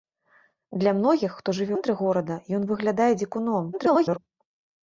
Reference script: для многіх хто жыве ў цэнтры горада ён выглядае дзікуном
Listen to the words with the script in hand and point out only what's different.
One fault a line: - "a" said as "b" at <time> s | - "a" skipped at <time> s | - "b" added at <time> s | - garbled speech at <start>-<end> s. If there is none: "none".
- "ў" skipped at 1.8 s
- garbled speech at 3.7-4.2 s